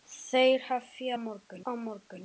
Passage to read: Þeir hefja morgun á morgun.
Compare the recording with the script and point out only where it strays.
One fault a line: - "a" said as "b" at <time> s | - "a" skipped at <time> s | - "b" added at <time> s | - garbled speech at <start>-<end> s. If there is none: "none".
none